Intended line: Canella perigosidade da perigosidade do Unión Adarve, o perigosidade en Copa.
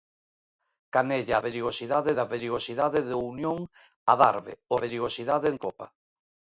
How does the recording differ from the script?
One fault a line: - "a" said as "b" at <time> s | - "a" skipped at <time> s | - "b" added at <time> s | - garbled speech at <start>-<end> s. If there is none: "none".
none